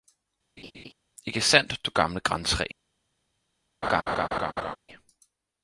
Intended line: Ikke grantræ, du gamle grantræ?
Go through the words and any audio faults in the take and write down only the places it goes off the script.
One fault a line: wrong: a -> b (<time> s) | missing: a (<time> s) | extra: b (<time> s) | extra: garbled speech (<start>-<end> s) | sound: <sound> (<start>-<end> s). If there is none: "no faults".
sound: laugh (0.6-0.9 s)
wrong: grantræ -> sandt (1.4 s)
sound: laugh (3.8-4.8 s)